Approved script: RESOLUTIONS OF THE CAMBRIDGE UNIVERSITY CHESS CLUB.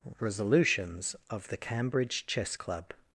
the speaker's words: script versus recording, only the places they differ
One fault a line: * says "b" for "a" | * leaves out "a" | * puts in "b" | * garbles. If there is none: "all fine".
* leaves out "UNIVERSITY"